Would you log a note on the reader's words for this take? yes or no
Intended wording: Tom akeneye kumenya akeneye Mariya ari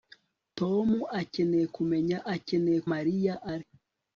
no